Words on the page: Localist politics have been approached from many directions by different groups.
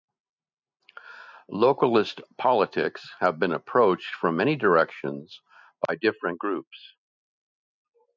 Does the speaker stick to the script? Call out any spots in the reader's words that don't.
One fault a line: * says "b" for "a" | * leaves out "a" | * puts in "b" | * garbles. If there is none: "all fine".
all fine